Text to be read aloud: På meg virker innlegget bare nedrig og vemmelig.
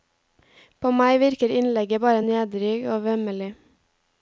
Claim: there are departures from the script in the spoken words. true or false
false